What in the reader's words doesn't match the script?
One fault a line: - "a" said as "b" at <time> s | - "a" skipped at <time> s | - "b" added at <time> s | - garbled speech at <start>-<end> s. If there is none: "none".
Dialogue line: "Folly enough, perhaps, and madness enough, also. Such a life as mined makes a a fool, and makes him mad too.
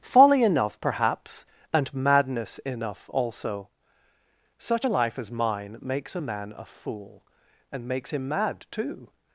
- "mined" said as "mine" at 5.3 s
- "man" added at 6.2 s